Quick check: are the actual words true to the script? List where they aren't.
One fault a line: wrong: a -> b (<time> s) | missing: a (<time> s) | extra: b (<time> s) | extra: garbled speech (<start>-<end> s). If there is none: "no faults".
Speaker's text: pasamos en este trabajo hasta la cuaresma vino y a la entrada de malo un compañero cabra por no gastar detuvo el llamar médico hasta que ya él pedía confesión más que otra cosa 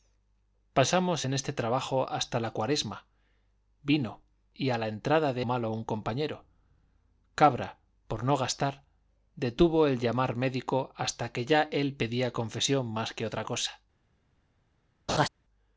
no faults